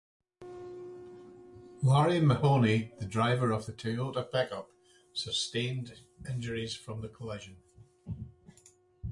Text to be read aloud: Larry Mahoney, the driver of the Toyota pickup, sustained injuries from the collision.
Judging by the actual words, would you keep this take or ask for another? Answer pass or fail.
pass